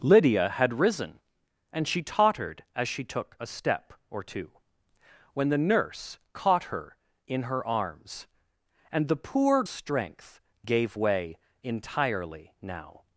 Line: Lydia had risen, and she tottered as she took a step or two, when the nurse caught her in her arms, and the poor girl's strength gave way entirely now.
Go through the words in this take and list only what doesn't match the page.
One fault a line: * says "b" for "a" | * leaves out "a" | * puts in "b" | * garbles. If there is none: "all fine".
* leaves out "girl's"